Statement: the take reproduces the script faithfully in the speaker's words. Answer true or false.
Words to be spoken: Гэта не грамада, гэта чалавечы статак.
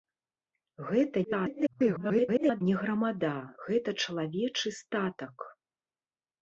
false